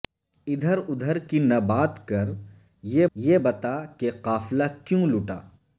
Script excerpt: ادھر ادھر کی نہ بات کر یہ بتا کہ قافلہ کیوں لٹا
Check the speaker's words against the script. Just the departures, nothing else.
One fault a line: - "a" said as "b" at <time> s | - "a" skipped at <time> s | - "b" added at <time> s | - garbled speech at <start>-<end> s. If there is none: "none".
- "یہ" added at 3.2 s